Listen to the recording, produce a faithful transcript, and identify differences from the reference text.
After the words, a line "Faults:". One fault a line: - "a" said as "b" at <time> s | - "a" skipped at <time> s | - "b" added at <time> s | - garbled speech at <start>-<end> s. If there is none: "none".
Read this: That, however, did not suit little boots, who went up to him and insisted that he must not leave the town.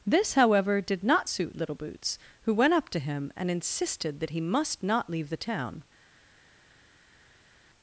This, however, did not suit little boots, who went up to him and insisted that he must not leave the town.
Faults:
- "That" said as "This" at 0.1 s